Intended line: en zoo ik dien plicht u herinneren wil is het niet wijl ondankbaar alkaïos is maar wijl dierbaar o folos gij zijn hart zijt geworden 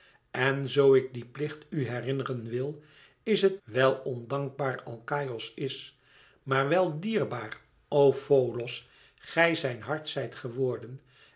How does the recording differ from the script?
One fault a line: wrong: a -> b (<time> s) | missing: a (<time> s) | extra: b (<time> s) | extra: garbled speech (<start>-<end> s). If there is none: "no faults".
missing: niet (3.6 s)